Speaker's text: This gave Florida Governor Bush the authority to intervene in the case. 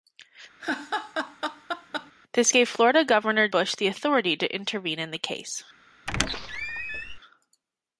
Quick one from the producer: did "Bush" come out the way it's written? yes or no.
yes